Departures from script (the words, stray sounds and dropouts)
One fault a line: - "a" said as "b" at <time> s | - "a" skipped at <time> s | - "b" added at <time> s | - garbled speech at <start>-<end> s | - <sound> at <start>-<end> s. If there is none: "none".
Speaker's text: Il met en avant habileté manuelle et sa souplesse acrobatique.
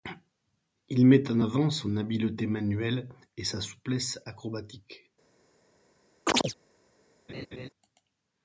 - "son" added at 1.7 s
- chirp at 6.3-6.5 s
- laugh at 7.3-7.7 s